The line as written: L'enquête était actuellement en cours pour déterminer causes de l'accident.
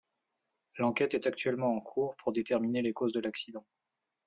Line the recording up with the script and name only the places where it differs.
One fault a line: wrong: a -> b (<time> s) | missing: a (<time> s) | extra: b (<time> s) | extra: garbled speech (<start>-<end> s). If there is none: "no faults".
wrong: était -> est (1.1 s)
extra: les (2.8 s)